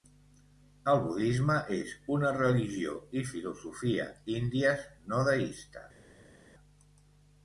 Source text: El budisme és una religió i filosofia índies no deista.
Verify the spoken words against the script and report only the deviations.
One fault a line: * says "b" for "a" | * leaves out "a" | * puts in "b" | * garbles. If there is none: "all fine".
all fine